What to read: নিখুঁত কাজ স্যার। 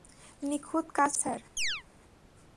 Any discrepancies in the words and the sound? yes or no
yes